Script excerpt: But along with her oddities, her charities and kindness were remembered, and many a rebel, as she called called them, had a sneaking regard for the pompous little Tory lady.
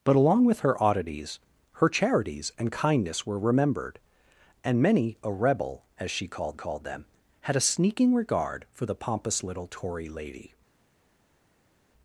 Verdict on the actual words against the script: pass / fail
pass